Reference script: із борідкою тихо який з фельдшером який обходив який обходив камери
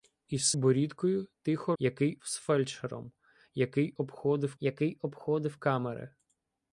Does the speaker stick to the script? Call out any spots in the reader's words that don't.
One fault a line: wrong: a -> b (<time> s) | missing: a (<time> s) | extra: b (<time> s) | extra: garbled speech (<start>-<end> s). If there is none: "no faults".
no faults